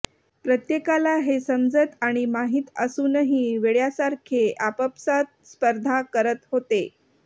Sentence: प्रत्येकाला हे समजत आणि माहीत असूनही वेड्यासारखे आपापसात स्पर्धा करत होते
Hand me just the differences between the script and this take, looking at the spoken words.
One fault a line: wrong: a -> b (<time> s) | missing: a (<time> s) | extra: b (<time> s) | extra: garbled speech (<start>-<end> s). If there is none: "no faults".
no faults